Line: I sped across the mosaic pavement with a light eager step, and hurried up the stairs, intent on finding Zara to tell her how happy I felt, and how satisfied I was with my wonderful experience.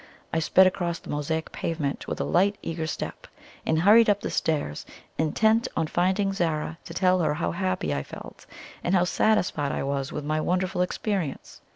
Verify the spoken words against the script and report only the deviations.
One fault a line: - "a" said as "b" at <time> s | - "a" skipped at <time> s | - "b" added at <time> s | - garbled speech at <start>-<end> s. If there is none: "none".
none